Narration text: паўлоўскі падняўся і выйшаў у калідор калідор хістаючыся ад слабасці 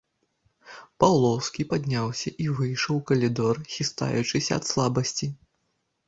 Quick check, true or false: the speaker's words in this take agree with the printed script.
false